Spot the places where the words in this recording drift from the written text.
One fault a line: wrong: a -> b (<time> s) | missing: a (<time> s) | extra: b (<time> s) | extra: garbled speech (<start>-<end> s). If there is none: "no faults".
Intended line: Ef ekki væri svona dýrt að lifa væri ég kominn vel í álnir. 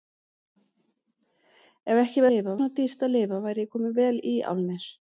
wrong: væri -> lifa (2.3 s)